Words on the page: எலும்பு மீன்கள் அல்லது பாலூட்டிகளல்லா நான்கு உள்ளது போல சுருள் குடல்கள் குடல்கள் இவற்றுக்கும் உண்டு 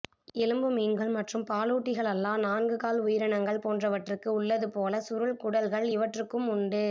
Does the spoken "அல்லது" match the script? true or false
false